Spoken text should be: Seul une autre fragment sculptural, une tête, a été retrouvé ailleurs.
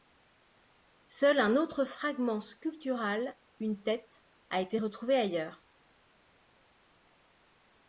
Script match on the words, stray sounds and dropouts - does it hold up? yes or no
no